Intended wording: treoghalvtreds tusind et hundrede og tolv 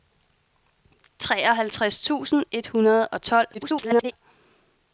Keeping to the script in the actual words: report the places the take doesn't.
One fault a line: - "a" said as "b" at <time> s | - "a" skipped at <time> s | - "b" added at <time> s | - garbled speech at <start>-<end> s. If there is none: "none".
- garbled speech at 3.5-4.1 s